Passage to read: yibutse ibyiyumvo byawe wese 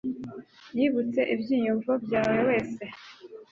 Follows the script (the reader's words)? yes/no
yes